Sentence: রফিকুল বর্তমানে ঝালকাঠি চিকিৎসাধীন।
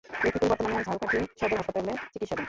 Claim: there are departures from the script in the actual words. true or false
true